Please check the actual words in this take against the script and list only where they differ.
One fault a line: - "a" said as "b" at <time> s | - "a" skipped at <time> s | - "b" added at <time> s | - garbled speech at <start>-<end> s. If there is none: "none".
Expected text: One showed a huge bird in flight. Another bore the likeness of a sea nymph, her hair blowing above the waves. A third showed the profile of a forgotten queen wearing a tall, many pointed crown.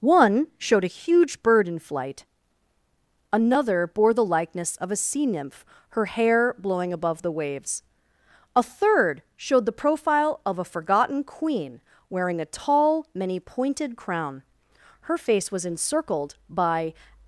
- "Her face was encircled by" added at 15.0 s